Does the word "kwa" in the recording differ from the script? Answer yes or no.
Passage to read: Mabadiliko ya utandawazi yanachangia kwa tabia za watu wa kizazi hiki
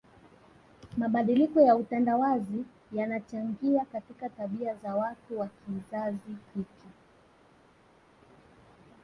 yes